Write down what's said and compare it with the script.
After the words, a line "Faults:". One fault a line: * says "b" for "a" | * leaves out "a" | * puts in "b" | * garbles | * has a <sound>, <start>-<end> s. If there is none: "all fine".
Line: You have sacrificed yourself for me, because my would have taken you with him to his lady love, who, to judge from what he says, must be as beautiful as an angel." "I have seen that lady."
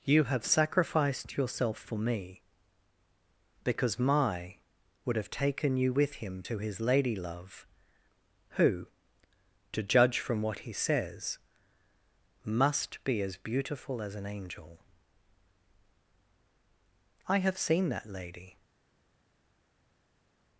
You have sacrificed yourself for me, because my would have taken you with him to his lady love, who, to judge from what he says, must be as beautiful as an angel." "I have seen that lady."
Faults:
all fine